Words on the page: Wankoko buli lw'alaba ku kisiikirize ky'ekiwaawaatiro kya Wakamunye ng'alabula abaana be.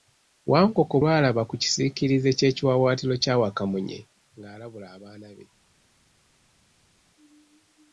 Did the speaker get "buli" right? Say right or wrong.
wrong